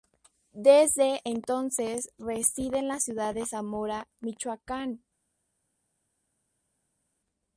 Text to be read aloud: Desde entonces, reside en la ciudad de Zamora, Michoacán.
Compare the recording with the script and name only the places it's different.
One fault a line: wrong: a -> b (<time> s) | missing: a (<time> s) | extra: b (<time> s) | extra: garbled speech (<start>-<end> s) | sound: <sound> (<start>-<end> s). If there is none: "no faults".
no faults